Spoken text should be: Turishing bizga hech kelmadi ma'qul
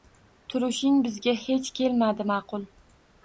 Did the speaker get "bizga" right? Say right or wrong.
right